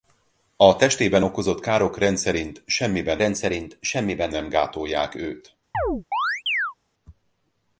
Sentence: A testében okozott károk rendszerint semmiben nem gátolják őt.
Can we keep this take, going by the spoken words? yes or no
no